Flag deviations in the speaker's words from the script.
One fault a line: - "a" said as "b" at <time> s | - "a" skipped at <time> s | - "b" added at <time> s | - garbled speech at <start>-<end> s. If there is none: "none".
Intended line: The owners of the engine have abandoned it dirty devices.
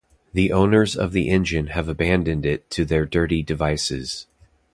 - "to their" added at 2.7 s